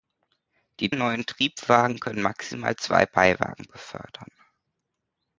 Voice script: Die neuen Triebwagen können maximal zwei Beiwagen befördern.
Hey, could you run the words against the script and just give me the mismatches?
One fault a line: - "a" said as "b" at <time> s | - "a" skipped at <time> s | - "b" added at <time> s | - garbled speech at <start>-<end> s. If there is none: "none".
none